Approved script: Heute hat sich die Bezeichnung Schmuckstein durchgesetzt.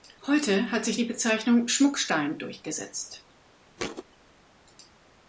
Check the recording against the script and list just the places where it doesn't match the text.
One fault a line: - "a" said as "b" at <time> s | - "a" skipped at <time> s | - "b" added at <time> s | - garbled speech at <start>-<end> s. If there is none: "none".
none